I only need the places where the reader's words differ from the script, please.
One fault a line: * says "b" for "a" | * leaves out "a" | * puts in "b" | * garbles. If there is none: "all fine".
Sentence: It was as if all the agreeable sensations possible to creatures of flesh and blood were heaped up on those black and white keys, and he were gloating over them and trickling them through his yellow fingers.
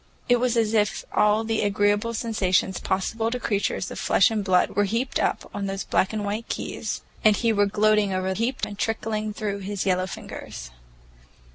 * says "heaped" for "them"
* leaves out "them"